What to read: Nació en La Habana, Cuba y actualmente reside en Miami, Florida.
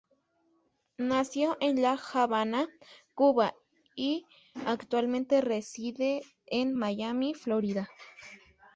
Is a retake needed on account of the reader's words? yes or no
no